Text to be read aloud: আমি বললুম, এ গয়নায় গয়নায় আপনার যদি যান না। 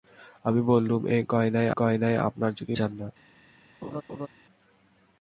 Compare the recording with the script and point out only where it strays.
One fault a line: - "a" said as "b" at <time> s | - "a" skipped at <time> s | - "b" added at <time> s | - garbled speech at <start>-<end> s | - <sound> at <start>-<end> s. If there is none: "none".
- laugh at 3.8-4.3 s